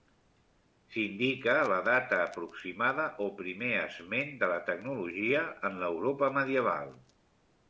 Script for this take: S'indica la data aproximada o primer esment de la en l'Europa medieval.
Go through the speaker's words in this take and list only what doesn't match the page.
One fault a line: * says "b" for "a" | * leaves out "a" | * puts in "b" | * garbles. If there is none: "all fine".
* puts in "tecnologia"